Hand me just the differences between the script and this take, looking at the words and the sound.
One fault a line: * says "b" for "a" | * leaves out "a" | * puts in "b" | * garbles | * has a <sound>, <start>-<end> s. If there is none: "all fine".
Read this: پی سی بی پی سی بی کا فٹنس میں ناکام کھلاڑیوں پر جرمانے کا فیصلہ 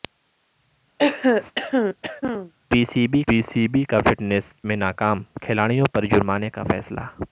* has a throat clearing, 1.0-2.5 s